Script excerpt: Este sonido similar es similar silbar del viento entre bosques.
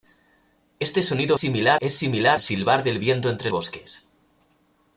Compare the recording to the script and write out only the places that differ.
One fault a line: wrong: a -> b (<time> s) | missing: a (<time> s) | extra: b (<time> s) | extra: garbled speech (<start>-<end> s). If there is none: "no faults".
no faults